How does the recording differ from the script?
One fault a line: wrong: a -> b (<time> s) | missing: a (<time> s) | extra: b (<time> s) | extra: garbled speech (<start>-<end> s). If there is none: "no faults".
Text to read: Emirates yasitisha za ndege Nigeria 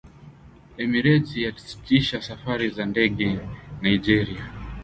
extra: safari (2.3 s)